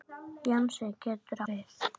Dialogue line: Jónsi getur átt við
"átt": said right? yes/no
no